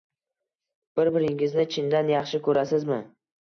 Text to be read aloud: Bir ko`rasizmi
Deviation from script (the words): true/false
true